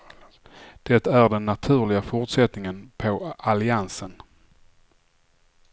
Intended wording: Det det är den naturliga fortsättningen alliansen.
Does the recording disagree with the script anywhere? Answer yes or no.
yes